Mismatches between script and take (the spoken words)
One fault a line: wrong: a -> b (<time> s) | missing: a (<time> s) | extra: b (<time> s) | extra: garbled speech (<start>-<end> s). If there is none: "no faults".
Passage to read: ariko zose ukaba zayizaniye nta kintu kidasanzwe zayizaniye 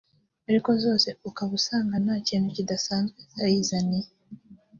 wrong: zayizaniye -> usanga (1.6 s)